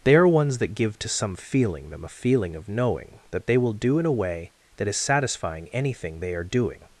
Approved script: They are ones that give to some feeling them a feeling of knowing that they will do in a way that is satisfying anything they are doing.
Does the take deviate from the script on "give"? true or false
false